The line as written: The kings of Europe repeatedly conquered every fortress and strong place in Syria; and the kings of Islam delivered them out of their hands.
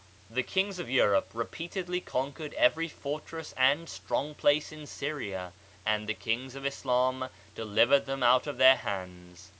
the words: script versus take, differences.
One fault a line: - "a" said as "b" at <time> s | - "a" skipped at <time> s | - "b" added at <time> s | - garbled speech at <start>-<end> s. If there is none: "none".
none